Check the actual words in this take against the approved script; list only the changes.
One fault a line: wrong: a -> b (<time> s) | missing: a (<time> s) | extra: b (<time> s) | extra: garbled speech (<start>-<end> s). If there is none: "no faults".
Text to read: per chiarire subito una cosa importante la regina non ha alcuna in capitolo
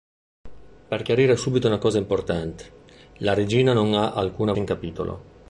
no faults